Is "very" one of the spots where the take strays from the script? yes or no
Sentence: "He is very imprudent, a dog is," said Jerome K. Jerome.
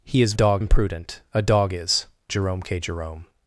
yes